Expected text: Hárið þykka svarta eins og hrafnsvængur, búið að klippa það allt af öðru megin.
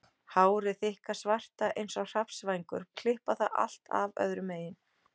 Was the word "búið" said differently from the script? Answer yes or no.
yes